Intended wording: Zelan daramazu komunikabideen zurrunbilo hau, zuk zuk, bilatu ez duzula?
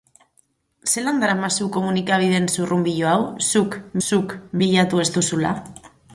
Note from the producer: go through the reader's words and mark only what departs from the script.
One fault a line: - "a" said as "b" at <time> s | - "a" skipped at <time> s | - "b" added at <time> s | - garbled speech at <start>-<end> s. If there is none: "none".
none